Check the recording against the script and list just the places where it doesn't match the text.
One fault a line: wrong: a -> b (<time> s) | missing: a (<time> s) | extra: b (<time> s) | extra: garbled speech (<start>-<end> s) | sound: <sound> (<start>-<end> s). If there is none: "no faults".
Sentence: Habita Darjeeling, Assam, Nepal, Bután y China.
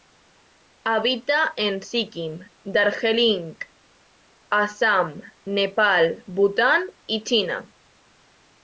extra: en Sikkim (1.6 s)